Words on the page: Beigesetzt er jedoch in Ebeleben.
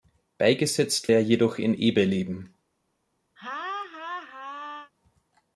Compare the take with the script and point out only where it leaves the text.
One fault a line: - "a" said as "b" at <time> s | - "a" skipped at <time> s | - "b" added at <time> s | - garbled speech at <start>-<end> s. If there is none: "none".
none